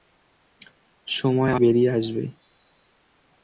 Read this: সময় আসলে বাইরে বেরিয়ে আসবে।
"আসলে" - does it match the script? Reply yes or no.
no